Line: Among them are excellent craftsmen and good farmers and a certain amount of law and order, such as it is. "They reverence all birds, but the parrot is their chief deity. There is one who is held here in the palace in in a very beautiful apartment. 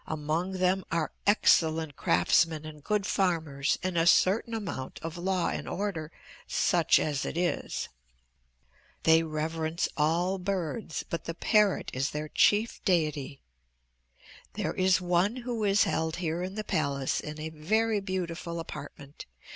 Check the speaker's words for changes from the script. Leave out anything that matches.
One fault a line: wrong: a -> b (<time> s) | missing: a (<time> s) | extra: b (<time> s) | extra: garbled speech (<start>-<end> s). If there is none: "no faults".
missing: in (17.4 s)